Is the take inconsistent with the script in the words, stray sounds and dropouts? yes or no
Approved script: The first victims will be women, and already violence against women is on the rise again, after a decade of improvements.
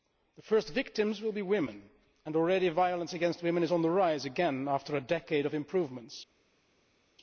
no